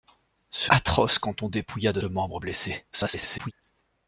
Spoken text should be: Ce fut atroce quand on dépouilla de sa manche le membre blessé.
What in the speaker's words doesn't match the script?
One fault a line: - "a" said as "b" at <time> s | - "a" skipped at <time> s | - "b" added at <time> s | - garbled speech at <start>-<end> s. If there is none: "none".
- "fut" skipped at 0.7 s
- "sa manche" skipped at 2.0 s
- garbled speech at 2.9-3.5 s